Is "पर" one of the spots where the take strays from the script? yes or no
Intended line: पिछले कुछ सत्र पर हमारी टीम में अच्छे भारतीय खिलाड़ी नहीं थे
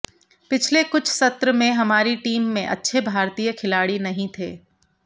yes